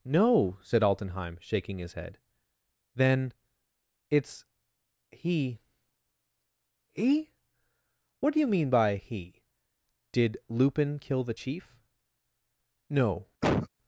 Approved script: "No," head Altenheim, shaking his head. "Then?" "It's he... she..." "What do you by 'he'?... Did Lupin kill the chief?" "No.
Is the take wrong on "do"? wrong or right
right